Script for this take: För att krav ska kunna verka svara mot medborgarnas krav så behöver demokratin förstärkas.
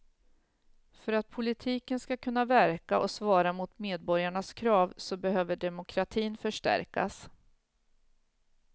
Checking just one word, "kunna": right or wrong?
right